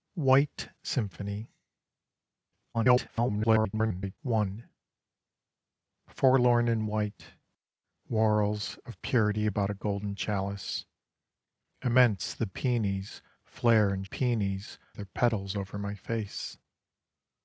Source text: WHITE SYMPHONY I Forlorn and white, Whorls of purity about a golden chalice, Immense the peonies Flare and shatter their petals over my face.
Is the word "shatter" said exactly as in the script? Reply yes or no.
no